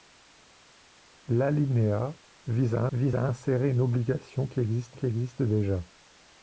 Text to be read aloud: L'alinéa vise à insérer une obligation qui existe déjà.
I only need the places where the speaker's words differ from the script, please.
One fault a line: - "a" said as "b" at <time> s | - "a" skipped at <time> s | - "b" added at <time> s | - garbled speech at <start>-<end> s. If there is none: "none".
- "vise à" added at 2.9 s
- "qui existe" added at 4.9 s